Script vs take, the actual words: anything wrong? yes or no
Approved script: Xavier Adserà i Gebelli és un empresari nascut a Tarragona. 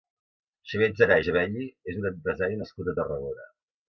no